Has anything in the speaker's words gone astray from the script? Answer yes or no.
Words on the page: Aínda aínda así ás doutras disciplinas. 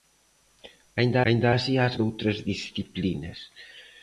no